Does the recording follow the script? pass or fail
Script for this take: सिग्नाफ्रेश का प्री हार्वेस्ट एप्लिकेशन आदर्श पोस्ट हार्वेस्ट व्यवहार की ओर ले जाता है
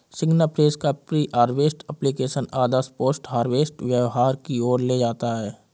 pass